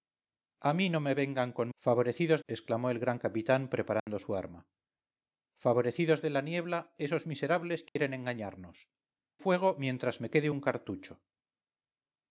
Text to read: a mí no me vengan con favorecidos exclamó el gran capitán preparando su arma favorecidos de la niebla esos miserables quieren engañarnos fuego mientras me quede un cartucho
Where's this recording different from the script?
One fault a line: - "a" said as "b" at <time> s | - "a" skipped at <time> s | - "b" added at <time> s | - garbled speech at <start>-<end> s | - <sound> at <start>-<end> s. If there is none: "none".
- dropout at 4.0-4.1 s
- dropout at 7.9-8.0 s